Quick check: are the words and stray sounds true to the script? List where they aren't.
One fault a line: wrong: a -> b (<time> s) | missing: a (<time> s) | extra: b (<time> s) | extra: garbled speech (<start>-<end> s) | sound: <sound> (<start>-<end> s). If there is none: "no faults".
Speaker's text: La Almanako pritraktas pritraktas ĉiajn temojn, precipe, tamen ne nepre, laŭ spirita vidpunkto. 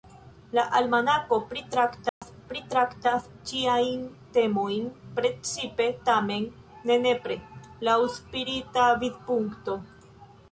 sound: dropout (2.1-2.2 s)